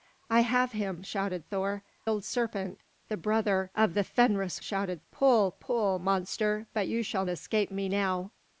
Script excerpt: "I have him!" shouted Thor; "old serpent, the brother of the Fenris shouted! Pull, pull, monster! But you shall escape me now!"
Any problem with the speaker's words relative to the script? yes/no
no